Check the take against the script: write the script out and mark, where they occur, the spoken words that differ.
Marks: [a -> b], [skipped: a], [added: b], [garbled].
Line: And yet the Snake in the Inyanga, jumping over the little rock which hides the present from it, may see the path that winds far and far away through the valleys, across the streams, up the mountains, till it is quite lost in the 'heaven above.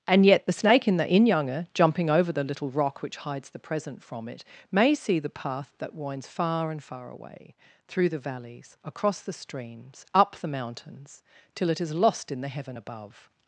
And yet the Snake in the Inyanga, jumping over the little rock which hides the present from it, may see the path that winds far and far away through the valleys, across the streams, up the mountains, till it is [skipped: quite] lost in the 'heaven above.